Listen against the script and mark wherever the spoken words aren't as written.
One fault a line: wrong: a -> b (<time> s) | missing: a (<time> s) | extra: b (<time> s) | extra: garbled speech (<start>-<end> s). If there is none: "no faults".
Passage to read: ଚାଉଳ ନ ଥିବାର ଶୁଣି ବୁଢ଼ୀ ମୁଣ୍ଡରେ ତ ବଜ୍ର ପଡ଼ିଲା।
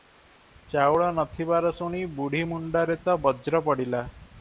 no faults